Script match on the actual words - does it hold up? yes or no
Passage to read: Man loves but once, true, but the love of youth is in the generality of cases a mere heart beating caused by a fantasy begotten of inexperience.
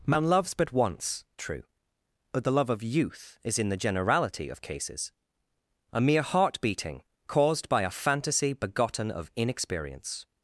yes